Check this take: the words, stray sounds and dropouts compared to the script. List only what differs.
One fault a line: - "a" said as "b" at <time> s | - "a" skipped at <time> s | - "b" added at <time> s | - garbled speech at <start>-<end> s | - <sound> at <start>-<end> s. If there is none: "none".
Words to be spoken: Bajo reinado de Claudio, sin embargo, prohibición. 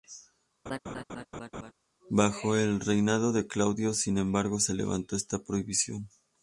- laugh at 0.7-1.7 s
- "el" added at 2.6 s
- "se levantó esta" added at 4.6 s